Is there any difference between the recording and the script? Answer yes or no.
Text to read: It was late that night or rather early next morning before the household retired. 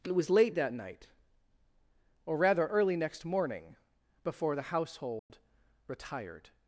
no